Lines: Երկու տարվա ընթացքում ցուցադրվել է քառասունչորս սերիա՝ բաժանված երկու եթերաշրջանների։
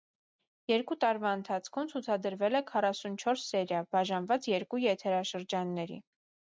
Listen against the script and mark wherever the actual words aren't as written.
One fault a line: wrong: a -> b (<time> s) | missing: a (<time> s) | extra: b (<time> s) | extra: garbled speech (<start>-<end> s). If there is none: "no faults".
no faults